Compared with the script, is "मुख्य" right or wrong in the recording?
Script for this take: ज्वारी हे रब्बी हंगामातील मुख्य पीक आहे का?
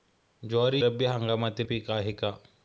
wrong